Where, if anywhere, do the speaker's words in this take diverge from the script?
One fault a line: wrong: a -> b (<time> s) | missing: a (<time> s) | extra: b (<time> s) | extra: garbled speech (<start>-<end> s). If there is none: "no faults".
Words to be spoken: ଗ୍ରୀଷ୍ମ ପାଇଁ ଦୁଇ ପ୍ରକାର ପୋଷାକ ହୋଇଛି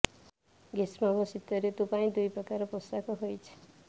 extra: ଓ ଶୀତ ଋତୁ (1.1 s)